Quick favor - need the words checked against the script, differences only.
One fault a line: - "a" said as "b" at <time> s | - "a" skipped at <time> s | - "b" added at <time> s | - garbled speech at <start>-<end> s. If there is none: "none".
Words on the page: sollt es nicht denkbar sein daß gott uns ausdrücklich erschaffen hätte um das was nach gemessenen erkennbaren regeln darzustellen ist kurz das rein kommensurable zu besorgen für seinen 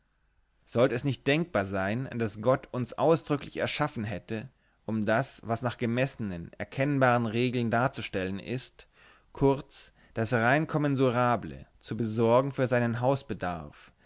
none